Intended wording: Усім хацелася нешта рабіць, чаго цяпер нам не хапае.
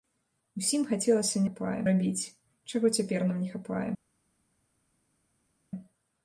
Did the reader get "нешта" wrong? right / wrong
wrong